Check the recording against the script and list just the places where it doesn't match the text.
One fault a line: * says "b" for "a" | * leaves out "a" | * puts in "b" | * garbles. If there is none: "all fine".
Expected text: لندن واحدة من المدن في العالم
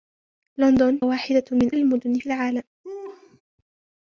all fine